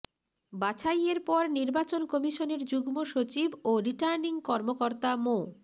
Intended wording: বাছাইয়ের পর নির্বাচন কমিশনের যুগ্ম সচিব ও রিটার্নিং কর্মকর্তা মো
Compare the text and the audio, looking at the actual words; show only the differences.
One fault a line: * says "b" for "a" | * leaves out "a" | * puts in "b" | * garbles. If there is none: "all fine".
all fine